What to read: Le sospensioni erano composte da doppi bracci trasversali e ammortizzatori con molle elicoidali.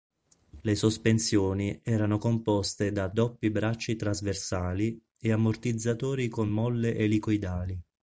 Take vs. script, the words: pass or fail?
pass